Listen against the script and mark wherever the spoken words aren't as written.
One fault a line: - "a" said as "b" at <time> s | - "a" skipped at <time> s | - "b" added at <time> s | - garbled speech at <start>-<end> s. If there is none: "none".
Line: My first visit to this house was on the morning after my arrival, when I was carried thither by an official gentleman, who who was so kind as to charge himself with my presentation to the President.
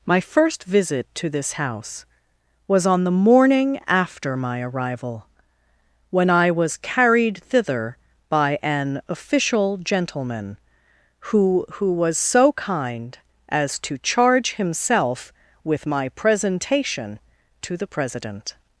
none